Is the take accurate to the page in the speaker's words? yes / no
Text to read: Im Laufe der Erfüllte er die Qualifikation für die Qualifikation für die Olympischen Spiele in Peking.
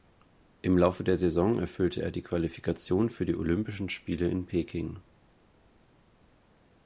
no